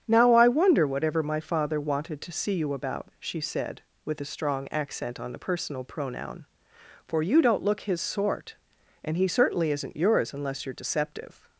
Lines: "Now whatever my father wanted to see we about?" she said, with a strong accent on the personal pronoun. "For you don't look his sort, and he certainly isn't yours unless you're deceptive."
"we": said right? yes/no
no